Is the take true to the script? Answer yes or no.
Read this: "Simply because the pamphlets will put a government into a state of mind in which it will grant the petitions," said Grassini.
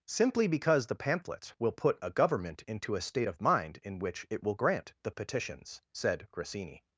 yes